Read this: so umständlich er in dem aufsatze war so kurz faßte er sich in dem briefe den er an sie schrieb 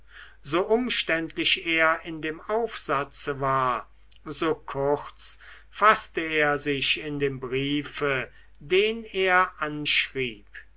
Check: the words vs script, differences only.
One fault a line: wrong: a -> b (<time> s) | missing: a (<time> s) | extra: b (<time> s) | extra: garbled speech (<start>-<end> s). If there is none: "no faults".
missing: sie (9.8 s)